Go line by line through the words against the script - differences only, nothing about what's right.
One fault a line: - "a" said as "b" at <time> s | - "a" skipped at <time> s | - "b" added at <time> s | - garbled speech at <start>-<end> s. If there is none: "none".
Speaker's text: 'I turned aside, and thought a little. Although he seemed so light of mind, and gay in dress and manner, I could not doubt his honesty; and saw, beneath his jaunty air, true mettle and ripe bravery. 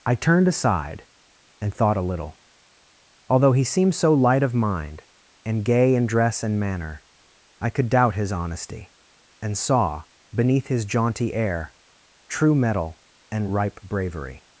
- "not" skipped at 7.9 s